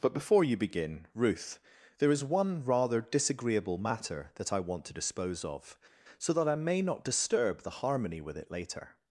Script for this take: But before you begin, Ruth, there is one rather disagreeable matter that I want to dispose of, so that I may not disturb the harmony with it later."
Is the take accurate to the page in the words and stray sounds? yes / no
yes